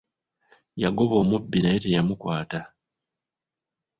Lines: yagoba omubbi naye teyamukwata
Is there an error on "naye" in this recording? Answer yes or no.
no